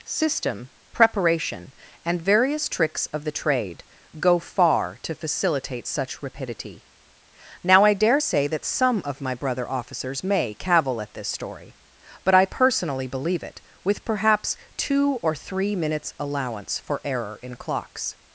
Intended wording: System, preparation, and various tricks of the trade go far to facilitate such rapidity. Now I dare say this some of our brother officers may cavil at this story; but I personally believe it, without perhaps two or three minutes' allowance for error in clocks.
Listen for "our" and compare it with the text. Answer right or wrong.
wrong